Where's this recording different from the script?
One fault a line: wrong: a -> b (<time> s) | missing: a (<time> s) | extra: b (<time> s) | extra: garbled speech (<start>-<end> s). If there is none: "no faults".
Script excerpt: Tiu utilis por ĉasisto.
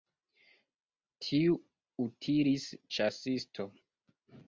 missing: por (2.7 s)